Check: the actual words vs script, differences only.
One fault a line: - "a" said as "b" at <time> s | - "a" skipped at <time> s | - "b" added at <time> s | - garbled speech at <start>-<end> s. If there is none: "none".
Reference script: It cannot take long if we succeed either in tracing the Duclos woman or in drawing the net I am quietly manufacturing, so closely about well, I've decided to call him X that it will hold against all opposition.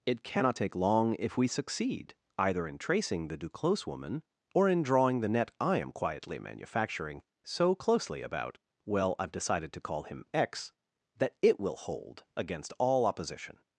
none